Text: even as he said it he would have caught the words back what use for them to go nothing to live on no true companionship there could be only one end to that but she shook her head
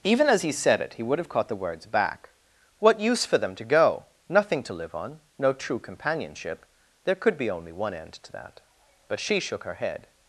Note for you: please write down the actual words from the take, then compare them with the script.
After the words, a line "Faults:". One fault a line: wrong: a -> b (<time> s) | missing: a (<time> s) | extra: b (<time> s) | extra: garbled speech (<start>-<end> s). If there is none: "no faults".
even as he said it he would have caught the words back what use for them to go nothing to live on no true companionship there could be only one end to that but she shook her head
Faults:
no faults